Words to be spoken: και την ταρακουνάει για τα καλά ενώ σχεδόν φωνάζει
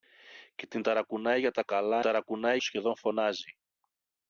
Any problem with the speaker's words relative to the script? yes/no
yes